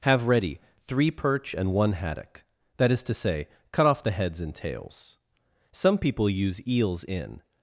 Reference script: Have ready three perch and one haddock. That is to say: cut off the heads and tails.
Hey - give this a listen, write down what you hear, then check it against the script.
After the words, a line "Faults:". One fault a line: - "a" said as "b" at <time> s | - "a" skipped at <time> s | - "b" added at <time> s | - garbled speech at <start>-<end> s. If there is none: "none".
Have ready three perch and one haddock. That is to say: cut off the heads and tails. Some people use eels in
Faults:
- "Some people use eels in" added at 5.7 s